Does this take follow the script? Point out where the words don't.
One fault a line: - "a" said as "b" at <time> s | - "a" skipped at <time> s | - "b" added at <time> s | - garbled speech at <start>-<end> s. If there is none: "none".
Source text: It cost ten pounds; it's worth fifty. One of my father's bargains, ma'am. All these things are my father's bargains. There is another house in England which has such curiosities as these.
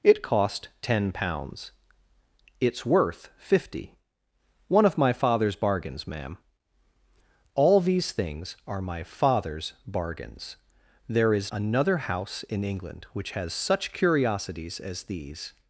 none